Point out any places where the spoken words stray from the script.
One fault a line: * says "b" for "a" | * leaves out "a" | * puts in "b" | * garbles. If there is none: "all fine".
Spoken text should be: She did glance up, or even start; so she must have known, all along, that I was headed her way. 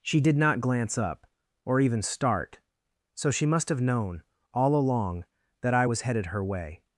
* puts in "not"